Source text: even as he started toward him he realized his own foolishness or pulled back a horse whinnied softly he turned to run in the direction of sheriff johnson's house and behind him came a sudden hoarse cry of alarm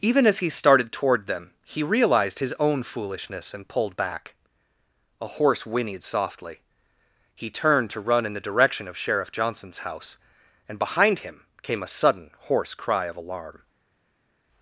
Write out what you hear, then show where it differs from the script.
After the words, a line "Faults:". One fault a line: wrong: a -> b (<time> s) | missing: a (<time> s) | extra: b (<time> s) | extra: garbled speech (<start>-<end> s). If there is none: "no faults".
even as he started toward them he realized his own foolishness and pulled back a horse whinnied softly he turned to run in the direction of sheriff johnson's house and behind him came a sudden hoarse cry of alarm
Faults:
wrong: him -> them (1.3 s)
wrong: or -> and (3.5 s)